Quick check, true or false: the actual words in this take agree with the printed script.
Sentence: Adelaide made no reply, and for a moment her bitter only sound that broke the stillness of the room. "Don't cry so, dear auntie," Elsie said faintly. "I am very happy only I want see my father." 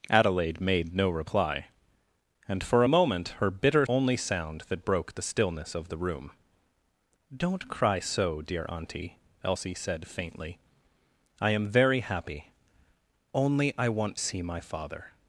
true